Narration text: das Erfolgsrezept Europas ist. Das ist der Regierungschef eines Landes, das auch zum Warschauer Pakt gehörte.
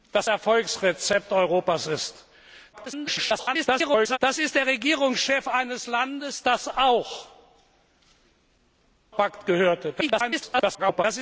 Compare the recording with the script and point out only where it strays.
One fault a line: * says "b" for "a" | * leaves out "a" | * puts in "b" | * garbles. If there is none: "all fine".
* garbles
* leaves out "zum Warschauer"
* garbles